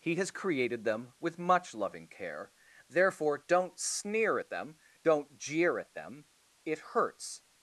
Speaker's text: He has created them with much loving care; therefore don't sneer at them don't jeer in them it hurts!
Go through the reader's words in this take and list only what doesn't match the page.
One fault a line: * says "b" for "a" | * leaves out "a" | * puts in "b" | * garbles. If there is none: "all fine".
* says "at" for "in"